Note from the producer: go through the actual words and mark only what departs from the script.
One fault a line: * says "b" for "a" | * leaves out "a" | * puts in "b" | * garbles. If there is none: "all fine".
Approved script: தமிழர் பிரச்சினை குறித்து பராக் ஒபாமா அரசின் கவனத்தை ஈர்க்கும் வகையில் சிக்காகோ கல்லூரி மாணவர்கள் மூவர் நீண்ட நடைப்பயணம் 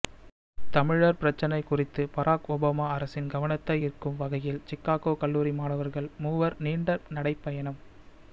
all fine